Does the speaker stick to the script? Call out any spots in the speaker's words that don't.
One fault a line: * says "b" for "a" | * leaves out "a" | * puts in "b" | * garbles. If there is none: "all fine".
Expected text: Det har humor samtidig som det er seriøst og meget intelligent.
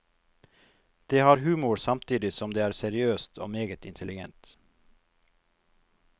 all fine